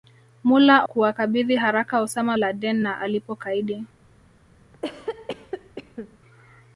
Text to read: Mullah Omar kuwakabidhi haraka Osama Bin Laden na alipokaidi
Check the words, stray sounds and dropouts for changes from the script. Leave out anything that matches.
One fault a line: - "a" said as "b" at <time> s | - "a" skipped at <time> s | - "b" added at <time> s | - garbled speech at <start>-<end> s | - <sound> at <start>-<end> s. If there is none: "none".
- "Omar" skipped at 0.9 s
- "Bin" skipped at 2.4 s
- cough at 4.7-6.2 s